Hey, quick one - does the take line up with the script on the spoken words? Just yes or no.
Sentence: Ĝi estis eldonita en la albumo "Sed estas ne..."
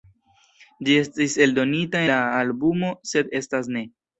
no